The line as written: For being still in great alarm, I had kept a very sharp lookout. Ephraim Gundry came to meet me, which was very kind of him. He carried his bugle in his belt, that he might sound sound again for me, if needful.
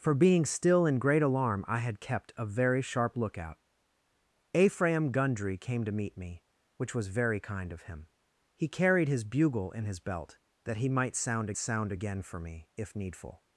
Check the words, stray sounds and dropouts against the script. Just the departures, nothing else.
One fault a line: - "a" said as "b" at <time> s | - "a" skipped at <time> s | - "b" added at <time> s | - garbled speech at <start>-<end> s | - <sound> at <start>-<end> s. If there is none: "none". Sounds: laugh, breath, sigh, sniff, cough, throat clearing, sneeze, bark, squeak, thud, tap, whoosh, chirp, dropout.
none